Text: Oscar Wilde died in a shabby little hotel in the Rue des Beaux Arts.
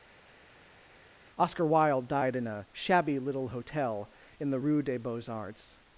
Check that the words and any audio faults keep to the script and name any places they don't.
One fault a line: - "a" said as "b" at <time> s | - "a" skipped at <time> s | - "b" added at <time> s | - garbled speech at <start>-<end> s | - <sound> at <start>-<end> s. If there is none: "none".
none